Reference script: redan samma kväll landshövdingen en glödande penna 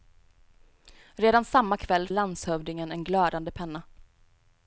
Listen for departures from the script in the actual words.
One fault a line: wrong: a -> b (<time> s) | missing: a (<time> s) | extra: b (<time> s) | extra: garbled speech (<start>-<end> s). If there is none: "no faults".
no faults